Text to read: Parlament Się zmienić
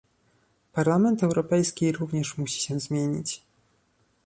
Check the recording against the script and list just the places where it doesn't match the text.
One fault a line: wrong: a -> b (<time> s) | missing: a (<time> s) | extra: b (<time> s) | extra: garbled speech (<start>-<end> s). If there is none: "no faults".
extra: Europejski również musi (1.2 s)